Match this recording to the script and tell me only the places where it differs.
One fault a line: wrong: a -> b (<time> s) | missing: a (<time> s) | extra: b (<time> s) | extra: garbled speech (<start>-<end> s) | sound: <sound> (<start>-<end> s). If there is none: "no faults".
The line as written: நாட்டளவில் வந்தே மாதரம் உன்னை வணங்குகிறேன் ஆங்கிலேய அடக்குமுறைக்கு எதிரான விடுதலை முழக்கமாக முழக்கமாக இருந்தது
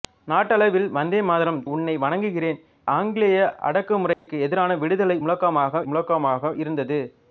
sound: dropout (4.1-4.3 s)